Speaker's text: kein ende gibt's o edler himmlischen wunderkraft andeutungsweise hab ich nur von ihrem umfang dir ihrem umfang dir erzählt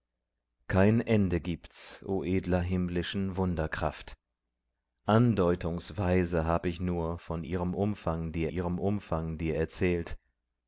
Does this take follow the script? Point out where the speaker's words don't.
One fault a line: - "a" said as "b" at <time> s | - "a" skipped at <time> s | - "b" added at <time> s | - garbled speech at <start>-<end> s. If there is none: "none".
none